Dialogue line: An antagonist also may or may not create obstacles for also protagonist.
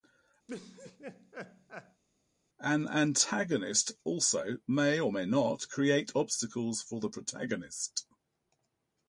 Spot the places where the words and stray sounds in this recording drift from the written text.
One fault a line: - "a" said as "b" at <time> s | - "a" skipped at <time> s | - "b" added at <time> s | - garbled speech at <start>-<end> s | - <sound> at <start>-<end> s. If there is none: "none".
- laugh at 0.5-2.0 s
- "also" said as "the" at 7.0 s